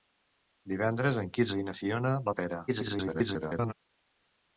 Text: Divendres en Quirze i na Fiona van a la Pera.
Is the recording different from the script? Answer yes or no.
yes